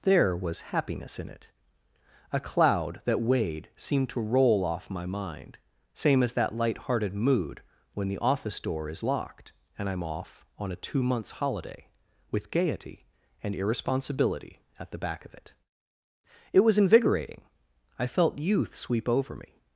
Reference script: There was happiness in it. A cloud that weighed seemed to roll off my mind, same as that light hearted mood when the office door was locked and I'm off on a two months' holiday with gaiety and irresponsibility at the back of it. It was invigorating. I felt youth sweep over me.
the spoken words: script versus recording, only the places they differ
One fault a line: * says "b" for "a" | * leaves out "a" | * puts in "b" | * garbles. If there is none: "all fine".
* says "is" for "was"